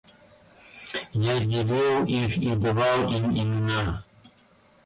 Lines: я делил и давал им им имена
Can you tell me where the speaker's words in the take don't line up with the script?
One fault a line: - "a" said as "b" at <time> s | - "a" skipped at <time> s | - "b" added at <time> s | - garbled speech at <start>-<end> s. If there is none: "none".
- "их" added at 2.1 s
- "им" skipped at 3.3 s